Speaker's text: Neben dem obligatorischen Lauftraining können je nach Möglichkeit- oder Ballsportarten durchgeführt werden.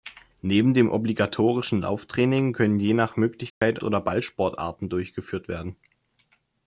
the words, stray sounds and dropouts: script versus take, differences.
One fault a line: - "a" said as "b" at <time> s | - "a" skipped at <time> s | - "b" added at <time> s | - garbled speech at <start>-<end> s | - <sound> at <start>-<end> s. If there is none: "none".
- dropout at 3.5-3.6 s